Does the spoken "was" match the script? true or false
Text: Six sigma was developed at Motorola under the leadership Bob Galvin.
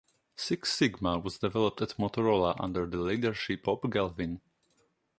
true